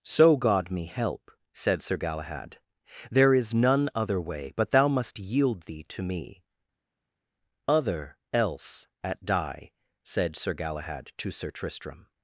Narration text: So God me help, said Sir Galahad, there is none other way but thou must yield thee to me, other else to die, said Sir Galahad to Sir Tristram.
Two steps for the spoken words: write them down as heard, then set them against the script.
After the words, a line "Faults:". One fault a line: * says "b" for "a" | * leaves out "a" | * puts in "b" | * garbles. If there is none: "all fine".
So God me help, said Sir Galahad, there is none other way but thou must yield thee to me, other else at die, said Sir Galahad to Sir Tristram.
Faults:
* says "at" for "to"